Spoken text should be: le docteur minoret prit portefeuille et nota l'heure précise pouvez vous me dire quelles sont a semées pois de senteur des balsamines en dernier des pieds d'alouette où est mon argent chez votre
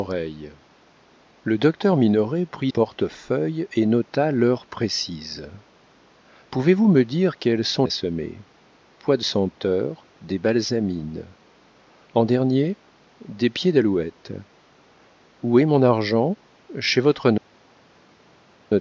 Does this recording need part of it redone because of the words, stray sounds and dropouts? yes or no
no